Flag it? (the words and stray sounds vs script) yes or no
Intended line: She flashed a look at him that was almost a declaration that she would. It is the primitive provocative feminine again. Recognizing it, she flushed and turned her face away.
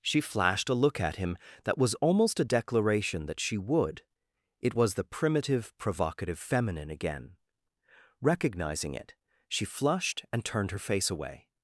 yes